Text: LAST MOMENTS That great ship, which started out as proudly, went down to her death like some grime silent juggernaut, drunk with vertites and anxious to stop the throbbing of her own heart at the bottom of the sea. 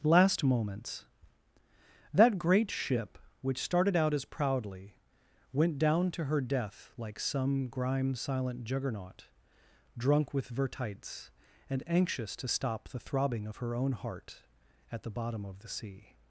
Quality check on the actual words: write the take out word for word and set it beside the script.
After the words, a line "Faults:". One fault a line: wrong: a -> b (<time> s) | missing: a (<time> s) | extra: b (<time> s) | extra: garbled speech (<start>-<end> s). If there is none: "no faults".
LAST MOMENTS That great ship, which started out as proudly, went down to her death like some grime silent juggernaut, drunk with vertites and anxious to stop the throbbing of her own heart at the bottom of the sea.
Faults:
no faults